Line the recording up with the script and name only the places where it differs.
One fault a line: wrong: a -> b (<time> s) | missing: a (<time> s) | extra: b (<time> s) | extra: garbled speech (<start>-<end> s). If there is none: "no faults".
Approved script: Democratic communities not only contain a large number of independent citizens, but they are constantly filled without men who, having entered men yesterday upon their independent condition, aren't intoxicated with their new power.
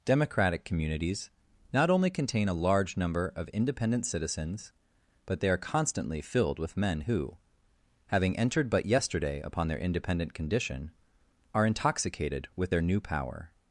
wrong: without -> with (6.6 s)
wrong: men -> but (8.7 s)
wrong: aren't -> are (11.5 s)